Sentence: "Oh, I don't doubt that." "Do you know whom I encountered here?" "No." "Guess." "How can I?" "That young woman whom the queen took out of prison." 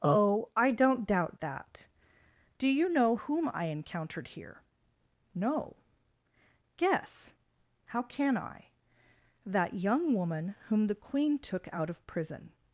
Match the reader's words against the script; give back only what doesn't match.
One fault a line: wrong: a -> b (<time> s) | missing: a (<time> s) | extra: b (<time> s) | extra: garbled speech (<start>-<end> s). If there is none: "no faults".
no faults